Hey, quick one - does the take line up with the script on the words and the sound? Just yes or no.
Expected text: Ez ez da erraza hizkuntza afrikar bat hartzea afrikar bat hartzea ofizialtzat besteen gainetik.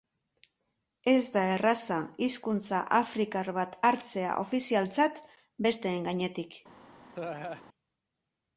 no